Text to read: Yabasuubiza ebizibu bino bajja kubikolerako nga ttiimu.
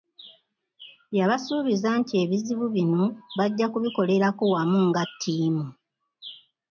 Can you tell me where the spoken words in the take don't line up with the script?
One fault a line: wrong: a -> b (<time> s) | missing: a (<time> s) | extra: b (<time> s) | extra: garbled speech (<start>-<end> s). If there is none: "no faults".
extra: nti (2.0 s)
extra: wamu (4.5 s)